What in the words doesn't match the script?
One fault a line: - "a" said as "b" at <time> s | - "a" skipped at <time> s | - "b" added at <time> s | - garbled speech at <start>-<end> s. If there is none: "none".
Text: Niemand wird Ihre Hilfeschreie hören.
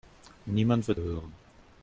- "Ihre Hilfeschreie" skipped at 1.0 s